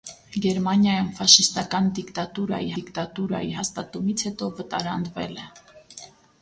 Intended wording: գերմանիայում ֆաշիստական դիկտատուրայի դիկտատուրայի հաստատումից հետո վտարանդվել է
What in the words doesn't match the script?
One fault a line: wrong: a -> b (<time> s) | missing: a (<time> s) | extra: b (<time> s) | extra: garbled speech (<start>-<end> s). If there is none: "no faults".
no faults